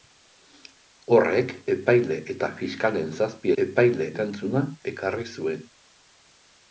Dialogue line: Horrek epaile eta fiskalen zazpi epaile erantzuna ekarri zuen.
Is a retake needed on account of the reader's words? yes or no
no